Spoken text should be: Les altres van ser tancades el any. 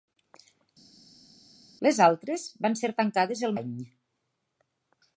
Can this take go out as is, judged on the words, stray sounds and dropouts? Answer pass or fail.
pass